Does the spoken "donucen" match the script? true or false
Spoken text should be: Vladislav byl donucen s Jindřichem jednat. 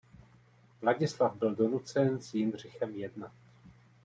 true